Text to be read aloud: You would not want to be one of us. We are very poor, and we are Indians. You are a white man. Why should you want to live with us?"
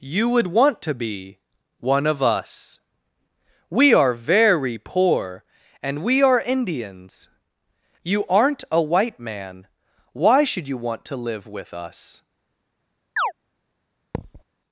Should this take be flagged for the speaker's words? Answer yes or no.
yes